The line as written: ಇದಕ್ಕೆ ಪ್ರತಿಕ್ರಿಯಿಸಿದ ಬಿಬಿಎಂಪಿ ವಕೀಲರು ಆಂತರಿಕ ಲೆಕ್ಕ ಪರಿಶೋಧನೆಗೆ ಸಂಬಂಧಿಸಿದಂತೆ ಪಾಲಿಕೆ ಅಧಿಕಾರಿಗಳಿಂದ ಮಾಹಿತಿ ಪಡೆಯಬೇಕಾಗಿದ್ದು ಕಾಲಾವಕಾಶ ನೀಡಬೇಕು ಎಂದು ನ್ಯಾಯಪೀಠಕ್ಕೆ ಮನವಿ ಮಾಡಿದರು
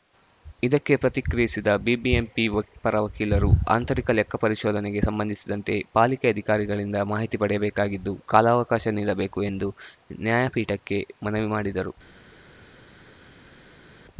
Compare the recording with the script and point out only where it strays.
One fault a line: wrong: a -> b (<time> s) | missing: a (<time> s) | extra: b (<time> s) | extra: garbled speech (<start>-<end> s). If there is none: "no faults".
extra: ಪರ (2.8 s)